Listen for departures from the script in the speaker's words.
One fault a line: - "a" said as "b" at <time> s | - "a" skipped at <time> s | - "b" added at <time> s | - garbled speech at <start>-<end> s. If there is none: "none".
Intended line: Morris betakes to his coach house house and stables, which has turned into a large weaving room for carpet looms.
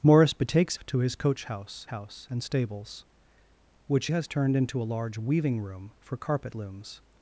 none